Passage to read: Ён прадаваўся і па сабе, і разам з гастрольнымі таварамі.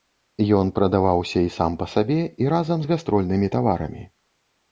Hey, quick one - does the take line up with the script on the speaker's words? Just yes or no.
no